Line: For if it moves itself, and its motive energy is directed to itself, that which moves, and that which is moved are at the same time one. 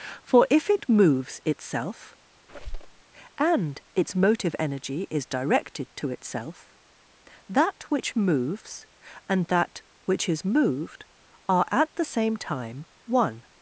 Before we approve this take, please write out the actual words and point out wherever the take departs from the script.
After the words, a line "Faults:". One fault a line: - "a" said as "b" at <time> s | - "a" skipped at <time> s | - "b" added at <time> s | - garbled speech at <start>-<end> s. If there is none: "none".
For if it moves itself, and its motive energy is directed to itself, that which moves, and that which is moved are at the same time one.
Faults:
none